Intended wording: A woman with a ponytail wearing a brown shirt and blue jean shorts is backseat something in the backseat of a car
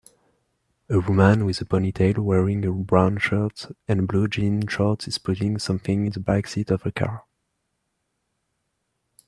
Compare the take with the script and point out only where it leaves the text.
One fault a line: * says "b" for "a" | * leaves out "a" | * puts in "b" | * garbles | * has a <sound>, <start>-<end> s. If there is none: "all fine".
* says "putting" for "backseat"